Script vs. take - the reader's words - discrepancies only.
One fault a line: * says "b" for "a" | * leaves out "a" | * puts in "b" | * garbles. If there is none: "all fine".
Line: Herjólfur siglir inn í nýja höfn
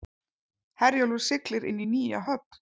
all fine